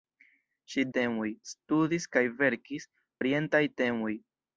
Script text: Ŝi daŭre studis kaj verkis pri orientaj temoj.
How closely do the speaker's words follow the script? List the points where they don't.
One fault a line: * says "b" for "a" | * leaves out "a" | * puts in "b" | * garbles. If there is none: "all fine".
* says "temoj" for "daŭre"
* leaves out "pri"